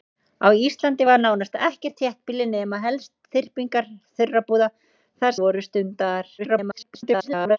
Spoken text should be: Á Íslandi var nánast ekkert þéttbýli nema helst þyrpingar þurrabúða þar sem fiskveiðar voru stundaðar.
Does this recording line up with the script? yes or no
no